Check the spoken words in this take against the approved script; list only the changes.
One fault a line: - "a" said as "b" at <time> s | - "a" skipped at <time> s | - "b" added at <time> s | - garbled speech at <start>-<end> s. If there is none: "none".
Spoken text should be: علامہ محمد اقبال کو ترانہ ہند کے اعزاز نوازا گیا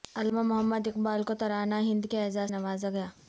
none